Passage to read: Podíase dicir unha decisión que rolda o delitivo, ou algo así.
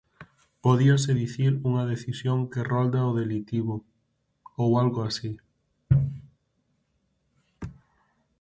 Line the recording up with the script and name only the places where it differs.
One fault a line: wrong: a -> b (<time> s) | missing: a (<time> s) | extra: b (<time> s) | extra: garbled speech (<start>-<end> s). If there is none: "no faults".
no faults